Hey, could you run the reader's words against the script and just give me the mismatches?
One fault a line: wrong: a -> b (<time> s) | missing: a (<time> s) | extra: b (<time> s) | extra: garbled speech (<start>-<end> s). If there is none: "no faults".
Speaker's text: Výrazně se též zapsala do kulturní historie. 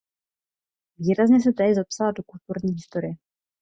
no faults